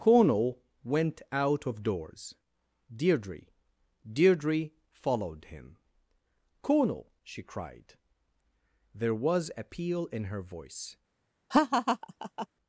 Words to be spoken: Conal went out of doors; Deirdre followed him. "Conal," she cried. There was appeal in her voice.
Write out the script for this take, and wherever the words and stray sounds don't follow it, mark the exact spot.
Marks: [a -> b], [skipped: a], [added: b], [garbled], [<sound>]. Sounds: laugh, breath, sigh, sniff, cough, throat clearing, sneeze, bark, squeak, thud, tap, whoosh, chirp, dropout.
Conal went out of doors; Deirdre [added: Deirdre] followed him. "Conal," she cried. There was appeal in her voice. [laugh]